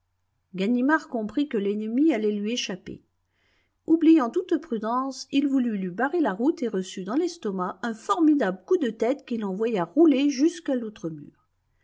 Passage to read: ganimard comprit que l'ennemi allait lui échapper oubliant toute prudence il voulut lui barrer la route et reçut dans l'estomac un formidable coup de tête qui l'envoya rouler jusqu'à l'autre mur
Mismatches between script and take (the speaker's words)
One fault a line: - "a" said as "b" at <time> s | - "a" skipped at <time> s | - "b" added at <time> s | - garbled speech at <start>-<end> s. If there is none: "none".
none